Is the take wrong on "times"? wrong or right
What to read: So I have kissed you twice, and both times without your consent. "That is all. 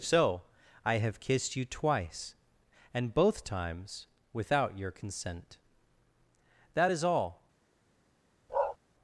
right